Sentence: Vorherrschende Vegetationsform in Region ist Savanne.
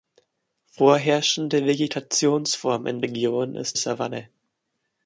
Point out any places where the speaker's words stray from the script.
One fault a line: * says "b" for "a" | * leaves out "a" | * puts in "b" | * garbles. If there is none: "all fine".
all fine